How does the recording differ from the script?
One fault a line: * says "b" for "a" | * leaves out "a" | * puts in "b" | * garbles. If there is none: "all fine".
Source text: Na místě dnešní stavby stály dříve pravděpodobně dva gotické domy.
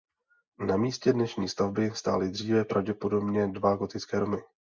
all fine